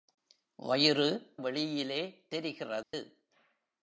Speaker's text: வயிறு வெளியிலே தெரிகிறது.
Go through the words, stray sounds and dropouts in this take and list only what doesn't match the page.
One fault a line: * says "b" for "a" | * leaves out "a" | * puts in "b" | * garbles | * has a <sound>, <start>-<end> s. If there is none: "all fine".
* has a dropout, 2.8-2.9 s